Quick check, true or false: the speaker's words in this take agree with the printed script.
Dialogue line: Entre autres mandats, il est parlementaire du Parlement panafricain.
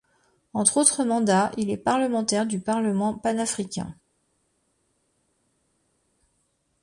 true